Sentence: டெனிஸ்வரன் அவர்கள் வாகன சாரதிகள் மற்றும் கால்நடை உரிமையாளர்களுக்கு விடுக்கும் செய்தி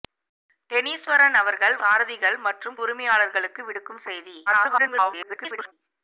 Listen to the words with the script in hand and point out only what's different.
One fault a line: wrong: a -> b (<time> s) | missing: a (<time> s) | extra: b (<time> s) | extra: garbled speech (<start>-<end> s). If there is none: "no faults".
missing: வாகன (1.8 s)
missing: கால்நடை (2.8 s)
extra: garbled speech (4.5-5.7 s)